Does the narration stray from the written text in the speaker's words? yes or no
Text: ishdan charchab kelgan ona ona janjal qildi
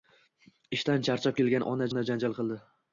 no